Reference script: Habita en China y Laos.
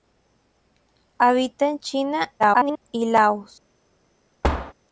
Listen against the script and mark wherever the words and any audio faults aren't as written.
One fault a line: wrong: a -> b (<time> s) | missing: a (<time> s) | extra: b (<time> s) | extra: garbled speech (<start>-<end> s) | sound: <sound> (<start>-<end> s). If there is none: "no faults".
extra: garbled speech (2.4-2.8 s)
sound: thud (4.4-4.7 s)